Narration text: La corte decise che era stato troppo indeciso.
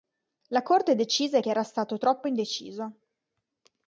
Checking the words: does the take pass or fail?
pass